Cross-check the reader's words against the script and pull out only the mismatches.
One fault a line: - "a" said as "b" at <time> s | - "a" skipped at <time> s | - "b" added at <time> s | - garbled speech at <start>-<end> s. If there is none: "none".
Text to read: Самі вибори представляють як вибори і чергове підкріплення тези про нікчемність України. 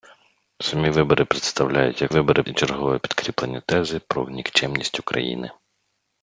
none